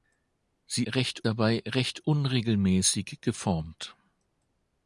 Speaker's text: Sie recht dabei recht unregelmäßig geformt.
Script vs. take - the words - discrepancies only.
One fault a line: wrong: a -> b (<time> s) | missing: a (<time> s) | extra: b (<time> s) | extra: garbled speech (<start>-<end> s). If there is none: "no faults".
no faults